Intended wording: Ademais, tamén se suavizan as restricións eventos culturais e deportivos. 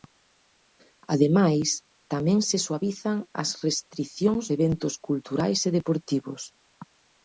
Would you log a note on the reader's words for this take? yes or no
no